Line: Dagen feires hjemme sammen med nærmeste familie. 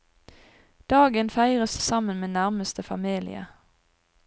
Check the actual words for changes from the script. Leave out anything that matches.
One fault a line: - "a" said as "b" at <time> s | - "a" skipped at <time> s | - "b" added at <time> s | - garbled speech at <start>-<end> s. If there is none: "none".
- "hjemme" skipped at 1.8 s